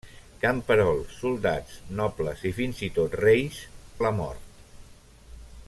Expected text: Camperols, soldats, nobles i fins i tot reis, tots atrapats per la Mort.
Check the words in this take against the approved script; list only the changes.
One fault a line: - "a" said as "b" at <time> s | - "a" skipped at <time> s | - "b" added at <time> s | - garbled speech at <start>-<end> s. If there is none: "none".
- "tots atrapats per" skipped at 3.6 s